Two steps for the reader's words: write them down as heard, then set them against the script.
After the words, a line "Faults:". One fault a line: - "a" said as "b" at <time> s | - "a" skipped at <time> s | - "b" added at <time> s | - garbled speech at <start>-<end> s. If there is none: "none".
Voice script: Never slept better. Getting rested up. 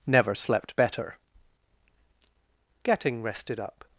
Never slept better. Getting rested up.
Faults:
none